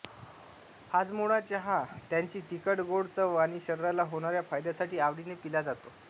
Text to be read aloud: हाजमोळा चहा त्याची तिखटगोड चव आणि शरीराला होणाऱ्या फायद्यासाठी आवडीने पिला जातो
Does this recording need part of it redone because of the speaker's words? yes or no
no